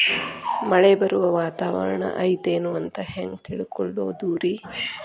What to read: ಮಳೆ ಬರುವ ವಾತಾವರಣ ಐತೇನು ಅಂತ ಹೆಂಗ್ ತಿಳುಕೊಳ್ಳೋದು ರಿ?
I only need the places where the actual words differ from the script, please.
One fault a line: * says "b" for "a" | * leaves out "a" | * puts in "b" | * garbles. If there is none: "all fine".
all fine